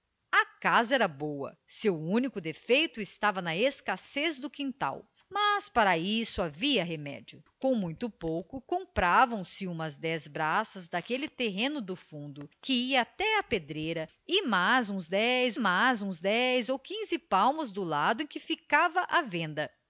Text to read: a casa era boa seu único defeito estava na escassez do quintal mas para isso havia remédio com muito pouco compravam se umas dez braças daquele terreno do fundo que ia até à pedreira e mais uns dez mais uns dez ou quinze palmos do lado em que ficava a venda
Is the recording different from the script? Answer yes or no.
no